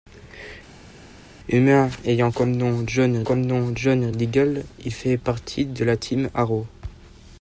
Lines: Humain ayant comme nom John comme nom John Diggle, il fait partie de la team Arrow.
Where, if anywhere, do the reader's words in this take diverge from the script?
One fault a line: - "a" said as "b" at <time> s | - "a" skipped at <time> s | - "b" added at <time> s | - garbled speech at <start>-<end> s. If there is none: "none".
none